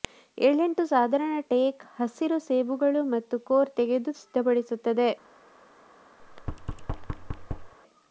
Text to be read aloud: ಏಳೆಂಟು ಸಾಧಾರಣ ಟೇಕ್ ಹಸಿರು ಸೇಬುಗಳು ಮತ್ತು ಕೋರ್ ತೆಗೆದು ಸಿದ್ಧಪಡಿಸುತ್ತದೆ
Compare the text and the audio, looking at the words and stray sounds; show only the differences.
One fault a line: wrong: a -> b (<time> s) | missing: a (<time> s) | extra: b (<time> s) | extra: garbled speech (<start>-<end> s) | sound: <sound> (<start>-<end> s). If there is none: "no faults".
sound: thud (6.2-7.7 s)